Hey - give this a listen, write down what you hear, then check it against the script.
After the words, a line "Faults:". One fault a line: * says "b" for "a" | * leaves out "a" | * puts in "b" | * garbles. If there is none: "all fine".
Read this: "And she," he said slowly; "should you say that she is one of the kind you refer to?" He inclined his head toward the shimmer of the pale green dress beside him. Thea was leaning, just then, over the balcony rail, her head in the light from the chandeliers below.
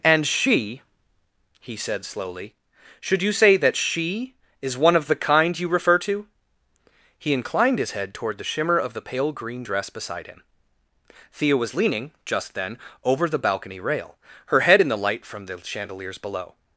"And she," he said slowly; "should you say that she is one of the kind you refer to?" He inclined his head toward the shimmer of the pale green dress beside him. Thea was leaning, just then, over the balcony rail, her head in the light from the chandeliers below.
Faults:
all fine